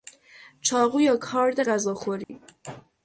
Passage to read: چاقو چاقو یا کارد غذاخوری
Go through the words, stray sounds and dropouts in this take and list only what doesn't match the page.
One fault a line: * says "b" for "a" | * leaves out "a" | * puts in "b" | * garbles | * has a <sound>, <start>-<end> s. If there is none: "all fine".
* leaves out "چاقو"
* has a dropout, 2.2-2.3 s